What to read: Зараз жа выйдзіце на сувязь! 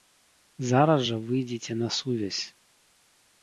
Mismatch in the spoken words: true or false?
false